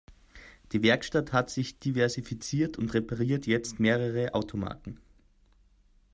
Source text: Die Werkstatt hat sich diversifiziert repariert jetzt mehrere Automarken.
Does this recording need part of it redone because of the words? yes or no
yes